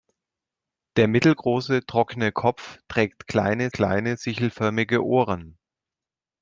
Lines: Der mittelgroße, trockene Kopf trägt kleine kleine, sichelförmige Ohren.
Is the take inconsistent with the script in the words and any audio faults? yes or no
no